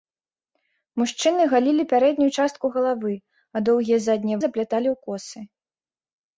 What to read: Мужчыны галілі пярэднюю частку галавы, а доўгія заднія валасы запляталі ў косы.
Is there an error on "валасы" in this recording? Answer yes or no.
yes